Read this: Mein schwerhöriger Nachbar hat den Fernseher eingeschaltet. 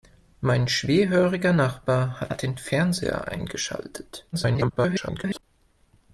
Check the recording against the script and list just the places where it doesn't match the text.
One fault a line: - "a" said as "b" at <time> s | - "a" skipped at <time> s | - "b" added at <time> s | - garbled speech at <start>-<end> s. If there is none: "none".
- "hat" added at 2.3 s
- garbled speech at 4.3-5.4 s